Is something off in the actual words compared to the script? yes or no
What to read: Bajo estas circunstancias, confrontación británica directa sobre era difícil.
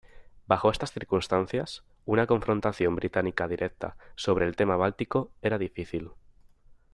yes